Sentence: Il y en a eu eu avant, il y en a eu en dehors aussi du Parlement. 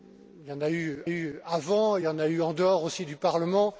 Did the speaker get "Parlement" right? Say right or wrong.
right